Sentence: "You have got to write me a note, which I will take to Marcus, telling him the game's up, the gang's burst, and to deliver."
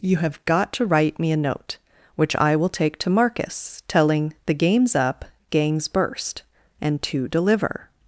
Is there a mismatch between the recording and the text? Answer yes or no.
yes